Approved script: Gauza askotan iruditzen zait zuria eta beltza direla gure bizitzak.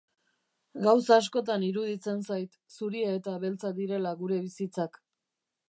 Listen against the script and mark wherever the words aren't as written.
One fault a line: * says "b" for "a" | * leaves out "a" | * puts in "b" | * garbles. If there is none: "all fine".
all fine